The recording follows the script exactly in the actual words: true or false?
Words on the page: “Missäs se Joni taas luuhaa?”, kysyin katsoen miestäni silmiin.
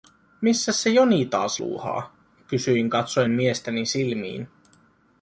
true